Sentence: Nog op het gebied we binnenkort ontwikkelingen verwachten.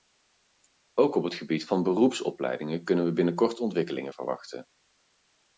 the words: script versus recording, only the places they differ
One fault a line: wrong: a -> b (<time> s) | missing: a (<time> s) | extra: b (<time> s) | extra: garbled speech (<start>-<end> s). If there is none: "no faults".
wrong: Nog -> Ook (0.9 s)
extra: van beroepsopleidingen kunnen (1.6 s)